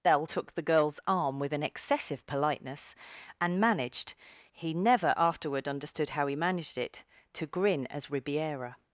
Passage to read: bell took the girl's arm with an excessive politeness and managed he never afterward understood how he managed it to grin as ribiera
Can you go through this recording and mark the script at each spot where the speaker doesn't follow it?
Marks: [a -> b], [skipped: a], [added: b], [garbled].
bell took the girl's arm with an excessive politeness and managed he never afterward understood how he managed it to grin as ribiera